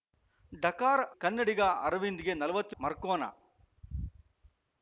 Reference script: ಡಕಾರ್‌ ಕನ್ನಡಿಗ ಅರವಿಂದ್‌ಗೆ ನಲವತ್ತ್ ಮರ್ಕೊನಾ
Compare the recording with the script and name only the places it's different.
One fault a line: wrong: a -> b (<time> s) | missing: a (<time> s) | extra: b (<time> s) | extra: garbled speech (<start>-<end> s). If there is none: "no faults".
no faults